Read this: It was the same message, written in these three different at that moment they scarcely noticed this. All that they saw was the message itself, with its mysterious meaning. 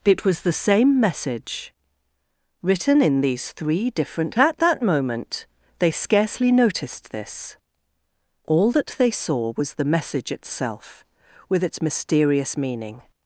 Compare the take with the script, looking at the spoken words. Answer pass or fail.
pass